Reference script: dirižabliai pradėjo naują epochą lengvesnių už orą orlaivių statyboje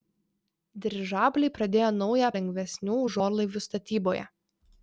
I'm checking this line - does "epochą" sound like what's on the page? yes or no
no